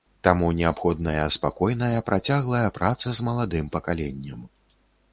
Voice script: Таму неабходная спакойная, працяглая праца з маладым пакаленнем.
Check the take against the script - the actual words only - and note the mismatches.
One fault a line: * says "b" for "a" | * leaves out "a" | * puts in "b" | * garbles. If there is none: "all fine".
all fine